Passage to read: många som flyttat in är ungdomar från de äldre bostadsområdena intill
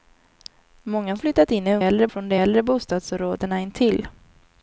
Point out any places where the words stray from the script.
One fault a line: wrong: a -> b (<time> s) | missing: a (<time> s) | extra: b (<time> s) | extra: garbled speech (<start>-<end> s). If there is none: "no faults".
missing: som (1.2 s)
wrong: ungdomar -> äldre (1.8 s)